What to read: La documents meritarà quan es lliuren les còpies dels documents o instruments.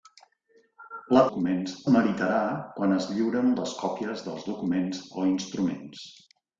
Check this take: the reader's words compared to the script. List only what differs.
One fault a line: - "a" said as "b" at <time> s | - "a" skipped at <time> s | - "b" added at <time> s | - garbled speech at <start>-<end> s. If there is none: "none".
none